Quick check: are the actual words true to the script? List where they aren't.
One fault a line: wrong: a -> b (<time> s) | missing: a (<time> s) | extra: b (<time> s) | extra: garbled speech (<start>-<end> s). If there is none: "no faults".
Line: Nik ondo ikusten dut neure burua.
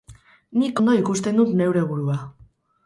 no faults